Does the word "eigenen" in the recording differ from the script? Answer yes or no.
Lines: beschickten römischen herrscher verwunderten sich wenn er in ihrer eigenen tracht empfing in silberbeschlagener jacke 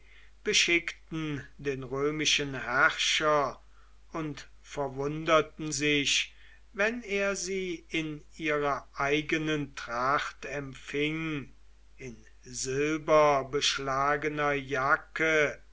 no